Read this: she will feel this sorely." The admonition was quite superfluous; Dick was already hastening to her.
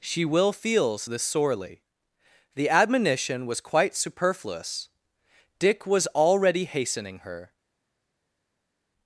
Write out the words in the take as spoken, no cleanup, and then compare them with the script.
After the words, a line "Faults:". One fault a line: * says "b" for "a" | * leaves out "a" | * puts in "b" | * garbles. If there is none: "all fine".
she will feels this sorely." The admonition was quite superfluous; Dick was already hastening her.
Faults:
* says "feels" for "feel"
* leaves out "to"